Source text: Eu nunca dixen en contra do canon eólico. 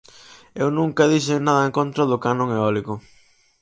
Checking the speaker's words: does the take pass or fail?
fail